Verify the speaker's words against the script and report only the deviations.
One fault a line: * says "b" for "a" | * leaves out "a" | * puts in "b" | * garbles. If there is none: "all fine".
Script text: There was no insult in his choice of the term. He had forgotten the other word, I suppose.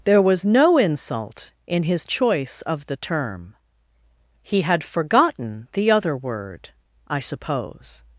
all fine